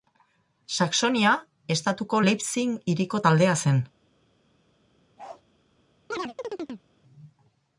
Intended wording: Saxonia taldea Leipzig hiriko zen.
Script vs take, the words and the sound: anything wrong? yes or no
yes